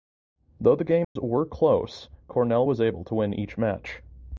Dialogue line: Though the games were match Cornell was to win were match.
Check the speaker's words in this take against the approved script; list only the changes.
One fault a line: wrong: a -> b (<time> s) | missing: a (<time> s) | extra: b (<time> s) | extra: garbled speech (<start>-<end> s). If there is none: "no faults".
wrong: match -> close (1.4 s)
extra: able (2.8 s)
wrong: were -> each (3.3 s)